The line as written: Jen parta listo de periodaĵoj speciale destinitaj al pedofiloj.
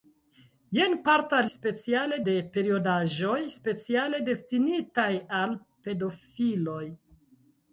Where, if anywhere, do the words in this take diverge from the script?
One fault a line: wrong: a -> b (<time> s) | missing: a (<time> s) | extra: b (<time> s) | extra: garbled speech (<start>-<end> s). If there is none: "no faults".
wrong: listo -> speciale (1.5 s)